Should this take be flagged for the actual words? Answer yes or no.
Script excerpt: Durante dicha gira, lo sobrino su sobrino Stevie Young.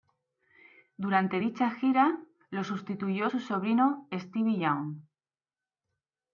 yes